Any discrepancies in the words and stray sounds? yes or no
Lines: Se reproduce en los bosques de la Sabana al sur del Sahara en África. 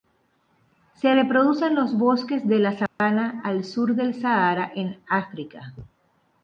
yes